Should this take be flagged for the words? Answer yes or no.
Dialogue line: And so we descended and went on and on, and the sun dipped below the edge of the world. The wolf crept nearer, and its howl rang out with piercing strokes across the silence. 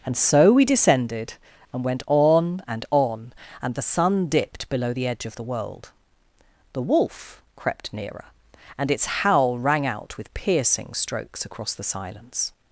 no